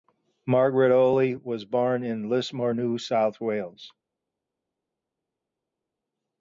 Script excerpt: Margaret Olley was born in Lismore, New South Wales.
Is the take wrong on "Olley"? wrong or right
right